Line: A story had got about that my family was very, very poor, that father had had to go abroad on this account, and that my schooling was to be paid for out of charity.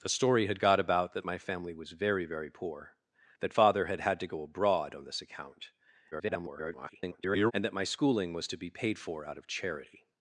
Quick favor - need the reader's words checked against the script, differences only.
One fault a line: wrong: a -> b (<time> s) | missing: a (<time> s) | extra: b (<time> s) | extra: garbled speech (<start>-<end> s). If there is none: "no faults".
extra: garbled speech (6.1-7.5 s)